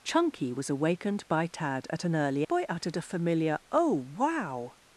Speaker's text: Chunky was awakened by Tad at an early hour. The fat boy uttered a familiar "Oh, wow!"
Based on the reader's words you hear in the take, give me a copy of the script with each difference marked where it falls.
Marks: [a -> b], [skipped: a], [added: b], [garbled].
Chunky was awakened by Tad at an early [skipped: hour. The fat] boy uttered a familiar "Oh, wow!"